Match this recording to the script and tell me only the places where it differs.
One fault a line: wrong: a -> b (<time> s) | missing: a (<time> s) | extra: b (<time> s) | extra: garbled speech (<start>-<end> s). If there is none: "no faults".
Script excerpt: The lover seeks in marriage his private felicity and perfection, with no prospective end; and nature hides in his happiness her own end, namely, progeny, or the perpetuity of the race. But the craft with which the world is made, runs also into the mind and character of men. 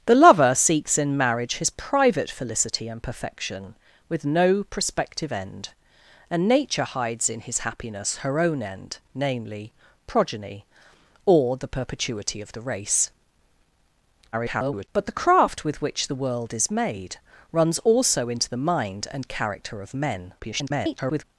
extra: garbled speech (14.3-14.9 s)
extra: garbled speech (20.4-21.2 s)